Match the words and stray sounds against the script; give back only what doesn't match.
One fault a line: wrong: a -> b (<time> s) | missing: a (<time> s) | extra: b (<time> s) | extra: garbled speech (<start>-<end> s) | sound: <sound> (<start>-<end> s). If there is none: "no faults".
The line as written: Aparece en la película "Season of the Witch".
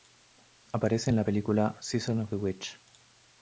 no faults